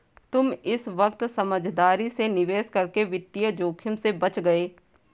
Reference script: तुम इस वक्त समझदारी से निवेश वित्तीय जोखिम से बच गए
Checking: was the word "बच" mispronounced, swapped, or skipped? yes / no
no